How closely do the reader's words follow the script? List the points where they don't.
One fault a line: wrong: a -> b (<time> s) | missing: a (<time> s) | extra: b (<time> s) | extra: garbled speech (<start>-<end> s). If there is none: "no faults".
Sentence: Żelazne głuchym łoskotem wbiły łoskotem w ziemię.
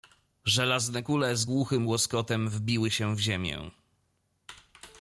extra: kule z (1.0 s)
wrong: łoskotem -> się (2.9 s)